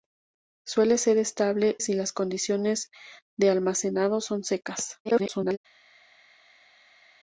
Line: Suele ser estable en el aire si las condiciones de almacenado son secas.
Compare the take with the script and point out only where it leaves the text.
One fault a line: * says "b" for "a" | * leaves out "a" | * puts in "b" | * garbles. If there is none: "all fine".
* leaves out "en el aire"
* garbles